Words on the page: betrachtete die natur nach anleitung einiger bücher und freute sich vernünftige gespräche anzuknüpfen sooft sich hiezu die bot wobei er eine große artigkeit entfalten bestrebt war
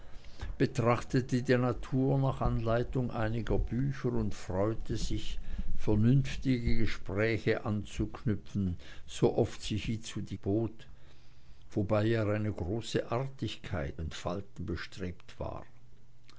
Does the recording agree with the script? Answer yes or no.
yes